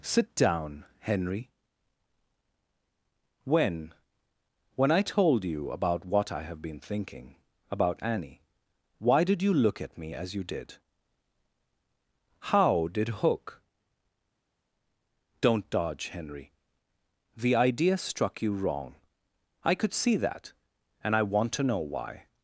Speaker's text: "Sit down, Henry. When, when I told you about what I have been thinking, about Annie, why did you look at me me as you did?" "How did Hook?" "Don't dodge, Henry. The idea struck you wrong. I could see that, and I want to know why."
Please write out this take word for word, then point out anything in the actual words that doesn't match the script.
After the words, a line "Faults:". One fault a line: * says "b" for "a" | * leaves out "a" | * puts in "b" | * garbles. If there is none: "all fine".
"Sit down, Henry. When, when I told you about what I have been thinking, about Annie, why did you look at me as you did?" "How did Hook?" "Don't dodge, Henry. The idea struck you wrong. I could see that, and I want to know why."
Faults:
* leaves out "me"